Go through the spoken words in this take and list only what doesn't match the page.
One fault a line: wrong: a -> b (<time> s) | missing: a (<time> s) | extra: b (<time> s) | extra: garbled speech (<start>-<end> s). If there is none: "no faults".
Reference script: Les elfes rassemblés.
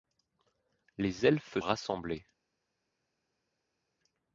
no faults